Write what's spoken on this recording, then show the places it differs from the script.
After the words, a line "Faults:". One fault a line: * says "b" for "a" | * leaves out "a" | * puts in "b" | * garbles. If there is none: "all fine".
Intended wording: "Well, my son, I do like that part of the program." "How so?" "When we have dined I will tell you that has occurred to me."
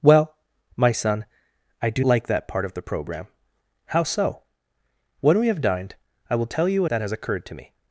"Well, my son, I do like that part of the program." "How so?" "When we have dined I will tell you that has occurred to me."
Faults:
all fine